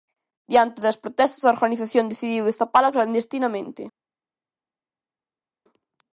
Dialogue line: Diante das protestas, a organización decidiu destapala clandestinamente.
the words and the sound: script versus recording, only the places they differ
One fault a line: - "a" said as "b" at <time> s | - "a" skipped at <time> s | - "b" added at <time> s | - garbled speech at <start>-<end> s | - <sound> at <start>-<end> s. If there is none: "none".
none